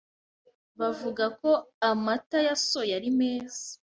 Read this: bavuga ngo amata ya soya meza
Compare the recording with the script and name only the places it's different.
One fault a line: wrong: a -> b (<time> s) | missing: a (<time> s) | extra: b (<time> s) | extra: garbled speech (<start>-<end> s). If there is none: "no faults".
wrong: ngo -> ko (1.4 s)
extra: ari (3.0 s)